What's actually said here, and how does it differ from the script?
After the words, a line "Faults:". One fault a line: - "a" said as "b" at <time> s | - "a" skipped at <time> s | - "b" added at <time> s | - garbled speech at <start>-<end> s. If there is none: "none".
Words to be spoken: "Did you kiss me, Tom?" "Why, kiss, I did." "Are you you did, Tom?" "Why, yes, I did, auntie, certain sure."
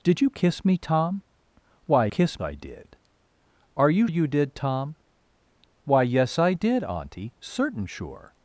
"Did you kiss me, Tom?" "Why, kiss, I did." "Are you you did, Tom?" "Why, yes, I did, auntie, certain sure."
Faults:
none